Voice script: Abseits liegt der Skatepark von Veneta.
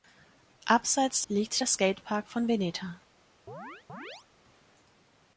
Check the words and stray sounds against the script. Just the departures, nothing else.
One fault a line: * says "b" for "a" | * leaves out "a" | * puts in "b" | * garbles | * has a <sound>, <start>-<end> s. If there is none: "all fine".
* has a chirp, 3.5-4.3 s